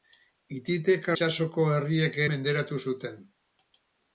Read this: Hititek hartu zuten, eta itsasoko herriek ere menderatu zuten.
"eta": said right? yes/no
no